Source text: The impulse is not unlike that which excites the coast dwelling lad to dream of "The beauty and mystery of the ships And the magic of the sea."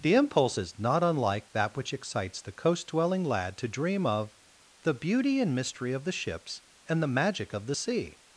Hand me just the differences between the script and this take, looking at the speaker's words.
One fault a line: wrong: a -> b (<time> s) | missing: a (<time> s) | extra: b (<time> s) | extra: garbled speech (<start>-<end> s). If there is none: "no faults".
no faults